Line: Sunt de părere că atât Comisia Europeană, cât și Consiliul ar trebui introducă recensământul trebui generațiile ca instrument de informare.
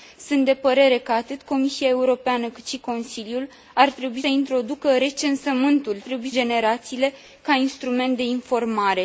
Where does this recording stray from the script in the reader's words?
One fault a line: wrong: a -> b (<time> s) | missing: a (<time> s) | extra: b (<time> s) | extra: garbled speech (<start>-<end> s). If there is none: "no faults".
no faults